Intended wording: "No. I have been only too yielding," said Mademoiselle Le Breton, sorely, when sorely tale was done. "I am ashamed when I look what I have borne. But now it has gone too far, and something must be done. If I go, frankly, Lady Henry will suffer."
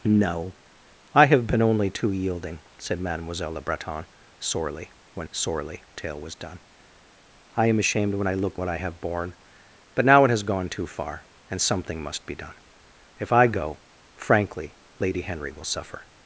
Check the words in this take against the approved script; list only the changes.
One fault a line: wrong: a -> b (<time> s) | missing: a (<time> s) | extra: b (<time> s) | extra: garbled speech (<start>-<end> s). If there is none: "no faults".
no faults